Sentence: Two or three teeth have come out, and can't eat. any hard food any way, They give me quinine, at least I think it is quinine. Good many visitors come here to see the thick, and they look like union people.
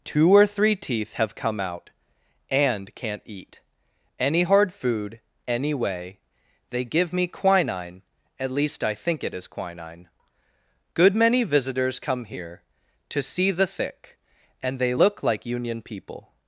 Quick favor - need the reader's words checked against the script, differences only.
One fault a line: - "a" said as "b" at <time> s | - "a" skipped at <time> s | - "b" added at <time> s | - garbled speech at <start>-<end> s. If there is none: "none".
none